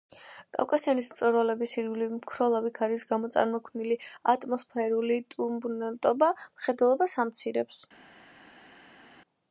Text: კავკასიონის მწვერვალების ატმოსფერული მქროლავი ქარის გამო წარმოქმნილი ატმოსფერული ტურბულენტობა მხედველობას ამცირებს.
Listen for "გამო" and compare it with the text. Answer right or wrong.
right